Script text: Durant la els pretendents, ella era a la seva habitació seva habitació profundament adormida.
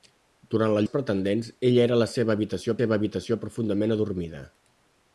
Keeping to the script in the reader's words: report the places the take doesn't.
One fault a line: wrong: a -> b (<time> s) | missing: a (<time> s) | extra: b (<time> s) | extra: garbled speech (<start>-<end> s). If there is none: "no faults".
no faults